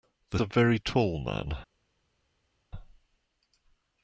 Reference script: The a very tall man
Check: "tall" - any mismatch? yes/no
no